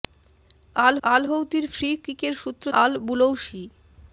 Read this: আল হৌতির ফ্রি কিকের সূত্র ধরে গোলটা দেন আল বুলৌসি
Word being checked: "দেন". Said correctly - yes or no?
no